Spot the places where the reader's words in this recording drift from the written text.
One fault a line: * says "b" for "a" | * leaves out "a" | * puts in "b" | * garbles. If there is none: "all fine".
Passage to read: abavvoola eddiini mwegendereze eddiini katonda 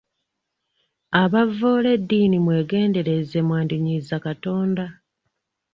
* says "mwandinyiiza" for "eddiini"